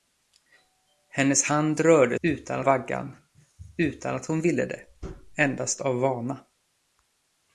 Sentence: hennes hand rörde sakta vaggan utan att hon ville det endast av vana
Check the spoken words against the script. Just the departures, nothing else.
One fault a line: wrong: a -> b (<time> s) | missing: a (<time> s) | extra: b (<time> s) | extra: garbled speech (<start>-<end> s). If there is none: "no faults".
wrong: sakta -> utan (2.2 s)